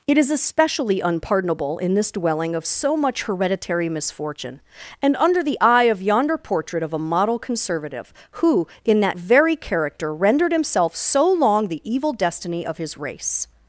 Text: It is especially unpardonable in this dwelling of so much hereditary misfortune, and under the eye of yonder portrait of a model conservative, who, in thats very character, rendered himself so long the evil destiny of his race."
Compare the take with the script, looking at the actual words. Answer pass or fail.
fail